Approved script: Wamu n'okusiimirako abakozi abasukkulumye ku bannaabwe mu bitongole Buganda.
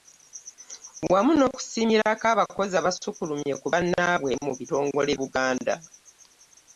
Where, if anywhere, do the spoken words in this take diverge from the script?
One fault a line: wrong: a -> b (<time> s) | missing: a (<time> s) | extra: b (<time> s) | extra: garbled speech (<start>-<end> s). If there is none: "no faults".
no faults